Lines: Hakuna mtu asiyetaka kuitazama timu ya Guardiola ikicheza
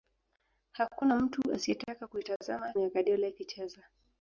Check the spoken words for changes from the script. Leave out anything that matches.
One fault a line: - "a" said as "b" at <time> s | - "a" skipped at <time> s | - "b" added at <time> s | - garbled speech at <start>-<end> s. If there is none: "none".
- "timu" skipped at 2.7 s